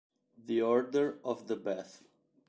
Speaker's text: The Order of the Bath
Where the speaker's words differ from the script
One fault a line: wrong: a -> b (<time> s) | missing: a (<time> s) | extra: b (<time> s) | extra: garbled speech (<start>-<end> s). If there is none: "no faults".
no faults